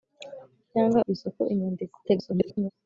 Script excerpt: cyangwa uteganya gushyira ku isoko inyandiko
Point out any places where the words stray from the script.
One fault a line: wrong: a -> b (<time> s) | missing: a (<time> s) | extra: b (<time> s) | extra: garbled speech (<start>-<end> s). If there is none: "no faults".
missing: uteganya gushyira (1.0 s)
extra: garbled speech (2.0-2.7 s)